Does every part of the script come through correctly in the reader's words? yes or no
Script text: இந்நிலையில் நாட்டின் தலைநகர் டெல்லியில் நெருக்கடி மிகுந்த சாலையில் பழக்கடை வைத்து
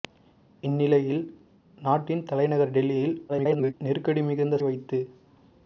no